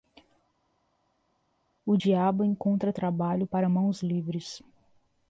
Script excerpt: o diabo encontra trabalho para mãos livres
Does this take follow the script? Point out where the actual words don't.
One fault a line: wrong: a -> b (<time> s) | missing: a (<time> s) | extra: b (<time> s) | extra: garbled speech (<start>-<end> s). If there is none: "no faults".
no faults